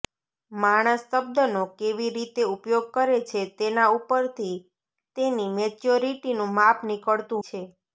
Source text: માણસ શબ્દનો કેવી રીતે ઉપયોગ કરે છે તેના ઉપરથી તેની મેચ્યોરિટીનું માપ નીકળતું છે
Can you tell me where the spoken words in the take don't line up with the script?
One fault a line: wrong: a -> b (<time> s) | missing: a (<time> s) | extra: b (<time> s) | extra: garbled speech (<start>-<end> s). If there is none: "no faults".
no faults